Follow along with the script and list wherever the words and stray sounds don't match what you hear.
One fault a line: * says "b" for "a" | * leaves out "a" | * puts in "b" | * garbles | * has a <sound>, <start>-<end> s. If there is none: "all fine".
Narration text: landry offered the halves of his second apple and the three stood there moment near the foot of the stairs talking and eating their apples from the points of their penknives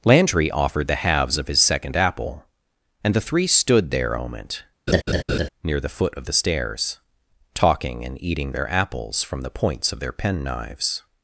* has a laugh, 4.9-5.5 s